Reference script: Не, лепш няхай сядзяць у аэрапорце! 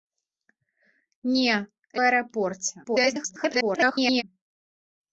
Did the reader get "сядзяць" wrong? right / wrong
wrong